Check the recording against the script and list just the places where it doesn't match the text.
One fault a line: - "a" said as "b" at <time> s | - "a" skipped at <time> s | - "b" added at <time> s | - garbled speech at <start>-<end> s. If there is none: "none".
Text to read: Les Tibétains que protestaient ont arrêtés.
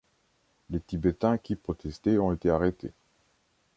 - "que" said as "qui" at 1.4 s
- "été" added at 2.3 s